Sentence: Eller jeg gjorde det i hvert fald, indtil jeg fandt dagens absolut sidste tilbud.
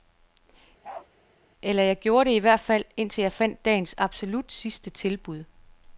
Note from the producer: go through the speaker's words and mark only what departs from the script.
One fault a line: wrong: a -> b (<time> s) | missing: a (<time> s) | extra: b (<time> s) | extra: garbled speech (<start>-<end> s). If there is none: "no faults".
no faults